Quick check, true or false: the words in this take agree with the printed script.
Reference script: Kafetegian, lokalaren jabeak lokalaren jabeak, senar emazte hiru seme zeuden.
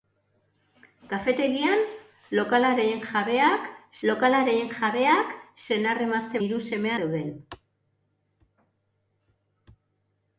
true